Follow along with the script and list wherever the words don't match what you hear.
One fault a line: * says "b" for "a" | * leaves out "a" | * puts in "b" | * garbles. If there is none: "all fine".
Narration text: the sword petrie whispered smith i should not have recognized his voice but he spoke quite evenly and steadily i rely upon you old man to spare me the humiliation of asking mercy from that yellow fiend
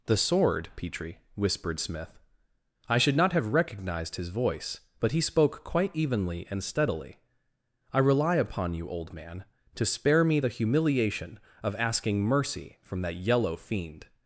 all fine